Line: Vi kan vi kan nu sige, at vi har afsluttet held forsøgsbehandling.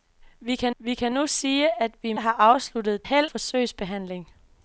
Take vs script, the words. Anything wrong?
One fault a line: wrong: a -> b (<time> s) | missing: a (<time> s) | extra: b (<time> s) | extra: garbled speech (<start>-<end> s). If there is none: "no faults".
no faults